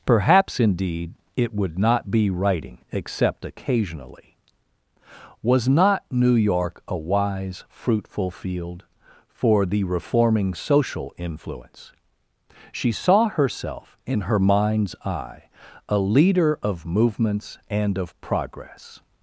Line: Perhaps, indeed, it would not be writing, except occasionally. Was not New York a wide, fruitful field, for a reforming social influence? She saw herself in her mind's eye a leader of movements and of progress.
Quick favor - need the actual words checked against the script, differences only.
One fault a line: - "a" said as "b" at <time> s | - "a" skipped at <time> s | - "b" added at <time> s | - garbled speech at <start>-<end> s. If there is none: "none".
- "wide" said as "wise" at 7.0 s
- "a" said as "the" at 9.7 s